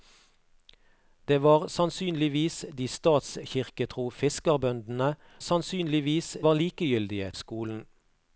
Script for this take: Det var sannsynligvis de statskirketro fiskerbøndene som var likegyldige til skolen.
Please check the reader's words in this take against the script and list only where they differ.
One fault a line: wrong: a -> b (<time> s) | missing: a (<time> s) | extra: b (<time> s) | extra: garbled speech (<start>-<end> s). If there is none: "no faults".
wrong: som -> sannsynligvis (5.4 s)
missing: til (7.3 s)